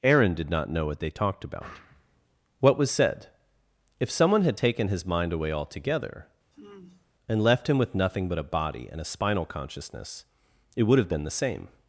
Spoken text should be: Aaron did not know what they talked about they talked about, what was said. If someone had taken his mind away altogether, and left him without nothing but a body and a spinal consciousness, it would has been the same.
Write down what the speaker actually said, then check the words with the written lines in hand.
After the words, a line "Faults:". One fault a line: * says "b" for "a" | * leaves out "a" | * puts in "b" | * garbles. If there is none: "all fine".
Aaron did not know what they talked about, what was said. If someone had taken his mind away altogether, and left him with nothing but a body and a spinal consciousness, it would have been the same.
Faults:
* leaves out "they talked about"
* says "with" for "without"
* says "have" for "has"